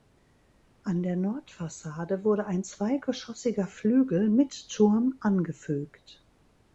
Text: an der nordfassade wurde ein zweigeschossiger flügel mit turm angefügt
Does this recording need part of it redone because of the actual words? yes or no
no